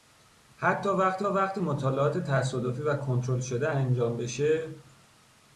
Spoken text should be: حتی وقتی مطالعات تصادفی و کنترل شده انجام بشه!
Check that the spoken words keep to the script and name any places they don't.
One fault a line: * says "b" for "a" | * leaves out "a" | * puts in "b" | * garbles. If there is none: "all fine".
* puts in "وقتی"